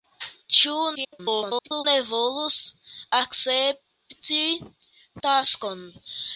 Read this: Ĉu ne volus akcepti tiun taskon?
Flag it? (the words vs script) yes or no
yes